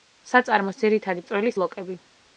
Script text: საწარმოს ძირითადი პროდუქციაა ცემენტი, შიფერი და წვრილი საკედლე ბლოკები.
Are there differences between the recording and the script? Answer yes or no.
yes